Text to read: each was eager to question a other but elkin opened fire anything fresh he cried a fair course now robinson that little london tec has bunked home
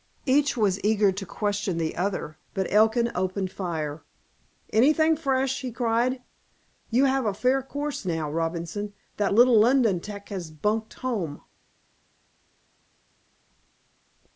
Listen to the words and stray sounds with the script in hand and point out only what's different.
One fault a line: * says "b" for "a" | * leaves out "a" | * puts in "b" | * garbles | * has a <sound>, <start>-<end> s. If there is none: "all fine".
* says "the" for "a"
* puts in "you have"